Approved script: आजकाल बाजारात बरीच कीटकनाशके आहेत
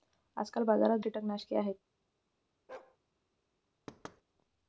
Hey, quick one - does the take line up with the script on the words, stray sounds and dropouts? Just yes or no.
no